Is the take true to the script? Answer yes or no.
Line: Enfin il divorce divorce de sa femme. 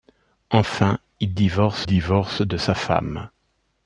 yes